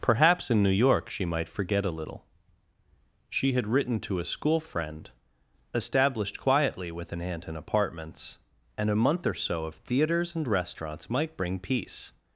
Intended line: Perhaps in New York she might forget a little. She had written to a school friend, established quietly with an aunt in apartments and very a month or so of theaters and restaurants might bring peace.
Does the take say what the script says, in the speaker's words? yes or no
no